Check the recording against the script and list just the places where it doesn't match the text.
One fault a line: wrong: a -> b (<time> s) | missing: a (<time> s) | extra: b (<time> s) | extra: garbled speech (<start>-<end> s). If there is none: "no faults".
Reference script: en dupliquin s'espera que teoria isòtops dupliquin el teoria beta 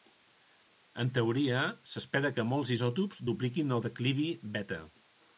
wrong: dupliquin -> teoria (1.2 s)
wrong: teoria -> molts (2.5 s)
wrong: teoria -> declivi (3.9 s)